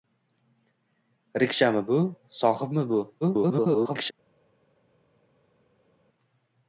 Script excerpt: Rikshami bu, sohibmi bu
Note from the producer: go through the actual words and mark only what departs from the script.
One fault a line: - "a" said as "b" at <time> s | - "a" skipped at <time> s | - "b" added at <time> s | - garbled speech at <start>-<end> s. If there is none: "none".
- garbled speech at 3.2-4.1 s